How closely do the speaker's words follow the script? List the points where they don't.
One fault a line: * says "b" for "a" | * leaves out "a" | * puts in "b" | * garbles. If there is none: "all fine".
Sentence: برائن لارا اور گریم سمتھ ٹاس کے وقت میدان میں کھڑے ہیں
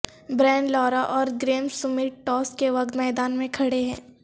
all fine